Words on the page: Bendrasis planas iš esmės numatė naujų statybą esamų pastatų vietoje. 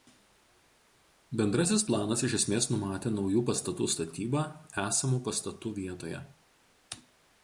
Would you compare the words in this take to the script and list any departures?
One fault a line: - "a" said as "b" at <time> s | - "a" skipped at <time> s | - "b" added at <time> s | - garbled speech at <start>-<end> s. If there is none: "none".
- "pastatų" added at 3.5 s